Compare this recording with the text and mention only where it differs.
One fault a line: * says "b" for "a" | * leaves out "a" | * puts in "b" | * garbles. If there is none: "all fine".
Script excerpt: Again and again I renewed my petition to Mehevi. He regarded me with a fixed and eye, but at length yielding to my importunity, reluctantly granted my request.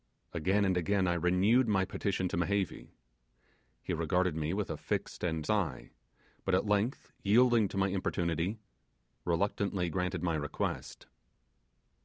all fine